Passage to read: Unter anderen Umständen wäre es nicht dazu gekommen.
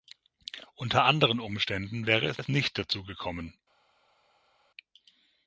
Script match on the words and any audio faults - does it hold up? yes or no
no